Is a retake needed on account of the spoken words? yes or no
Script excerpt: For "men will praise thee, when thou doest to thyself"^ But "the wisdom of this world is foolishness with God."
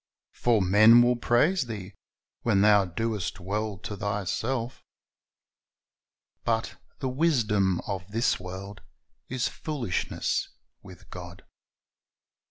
yes